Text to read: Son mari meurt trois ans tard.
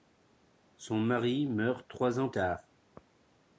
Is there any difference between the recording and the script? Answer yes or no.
no